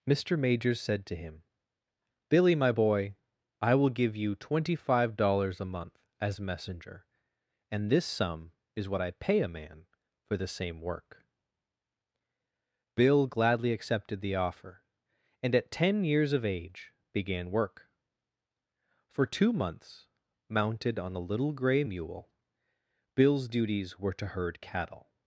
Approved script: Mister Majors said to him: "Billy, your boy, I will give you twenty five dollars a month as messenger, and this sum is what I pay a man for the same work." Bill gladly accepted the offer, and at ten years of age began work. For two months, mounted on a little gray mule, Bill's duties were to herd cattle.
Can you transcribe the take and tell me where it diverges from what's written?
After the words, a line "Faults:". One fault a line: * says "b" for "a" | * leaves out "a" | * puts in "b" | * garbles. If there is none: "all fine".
Mister Majors said to him: "Billy, my boy, I will give you twenty five dollars a month as messenger, and this sum is what I pay a man for the same work." Bill gladly accepted the offer, and at ten years of age began work. For two months, mounted on a little gray mule, Bill's duties were to herd cattle.
Faults:
* says "my" for "your"